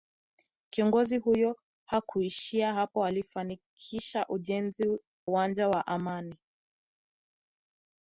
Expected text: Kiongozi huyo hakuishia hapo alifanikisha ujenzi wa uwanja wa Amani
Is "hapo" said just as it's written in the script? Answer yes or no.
yes